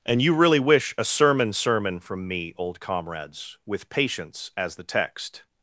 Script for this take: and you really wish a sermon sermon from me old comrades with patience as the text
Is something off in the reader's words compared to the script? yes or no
no